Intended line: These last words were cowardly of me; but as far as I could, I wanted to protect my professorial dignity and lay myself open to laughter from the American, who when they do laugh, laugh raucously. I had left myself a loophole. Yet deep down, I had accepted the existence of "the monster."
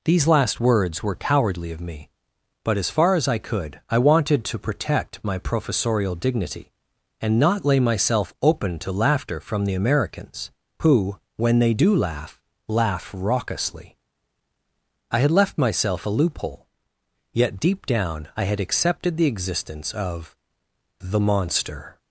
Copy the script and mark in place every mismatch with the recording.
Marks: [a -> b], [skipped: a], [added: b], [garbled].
These last words were cowardly of me; but as far as I could, I wanted to protect my professorial dignity and [added: not] lay myself open to laughter from the [American, -> Americans] who when they do laugh, laugh raucously. I had left myself a loophole. Yet deep down, I had accepted the existence of "the monster."